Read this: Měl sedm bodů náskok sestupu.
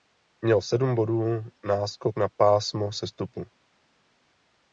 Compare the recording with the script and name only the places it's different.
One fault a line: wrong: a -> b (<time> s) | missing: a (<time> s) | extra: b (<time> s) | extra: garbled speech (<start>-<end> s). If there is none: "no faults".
extra: na pásmo (2.2 s)